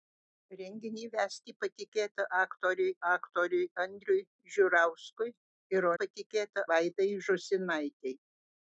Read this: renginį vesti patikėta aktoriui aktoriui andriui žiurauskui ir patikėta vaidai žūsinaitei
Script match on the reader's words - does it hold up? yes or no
yes